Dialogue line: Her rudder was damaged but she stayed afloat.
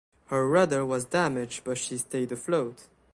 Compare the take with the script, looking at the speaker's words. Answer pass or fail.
pass